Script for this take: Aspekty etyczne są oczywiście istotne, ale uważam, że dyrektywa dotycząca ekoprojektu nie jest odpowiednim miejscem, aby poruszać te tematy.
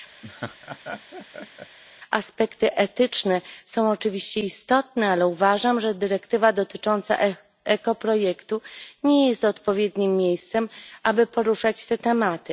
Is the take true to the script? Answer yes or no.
yes